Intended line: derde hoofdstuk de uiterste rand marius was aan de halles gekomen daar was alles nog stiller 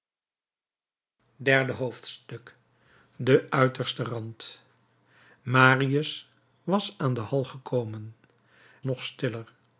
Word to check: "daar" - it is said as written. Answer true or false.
false